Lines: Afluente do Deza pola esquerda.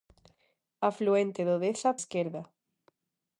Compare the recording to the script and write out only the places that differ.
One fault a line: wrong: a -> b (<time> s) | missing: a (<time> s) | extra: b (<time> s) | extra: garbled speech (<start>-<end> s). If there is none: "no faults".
missing: pola (1.9 s)